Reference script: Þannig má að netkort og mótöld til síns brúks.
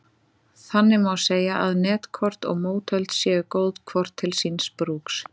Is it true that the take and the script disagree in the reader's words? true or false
true